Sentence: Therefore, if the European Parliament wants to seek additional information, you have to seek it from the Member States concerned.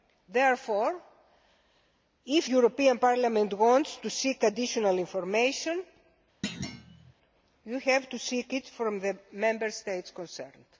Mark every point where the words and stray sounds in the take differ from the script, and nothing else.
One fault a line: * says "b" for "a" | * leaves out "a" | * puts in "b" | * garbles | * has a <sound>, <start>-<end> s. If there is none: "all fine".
* leaves out "the"
* has a thud, 6.4-7.1 s